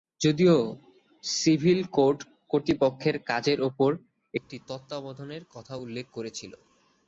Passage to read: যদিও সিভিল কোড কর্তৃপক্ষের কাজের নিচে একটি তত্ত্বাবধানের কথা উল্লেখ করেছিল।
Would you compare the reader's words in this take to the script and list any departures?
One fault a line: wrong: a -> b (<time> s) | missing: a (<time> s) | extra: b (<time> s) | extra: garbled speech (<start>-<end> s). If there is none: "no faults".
wrong: নিচে -> উপর (3.6 s)